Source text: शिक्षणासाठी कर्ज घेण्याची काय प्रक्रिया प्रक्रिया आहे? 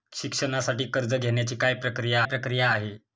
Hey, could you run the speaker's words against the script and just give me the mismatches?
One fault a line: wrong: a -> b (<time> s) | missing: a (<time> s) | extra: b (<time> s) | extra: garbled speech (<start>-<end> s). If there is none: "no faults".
no faults